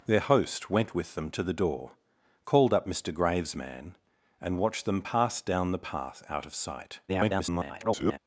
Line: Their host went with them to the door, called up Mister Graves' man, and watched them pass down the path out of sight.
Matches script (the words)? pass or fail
fail